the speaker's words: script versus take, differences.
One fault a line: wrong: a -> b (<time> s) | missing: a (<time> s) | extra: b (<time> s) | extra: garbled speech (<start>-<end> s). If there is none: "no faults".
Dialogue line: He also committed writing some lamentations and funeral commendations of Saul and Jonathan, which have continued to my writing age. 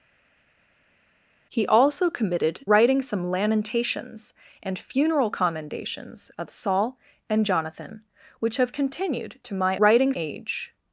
no faults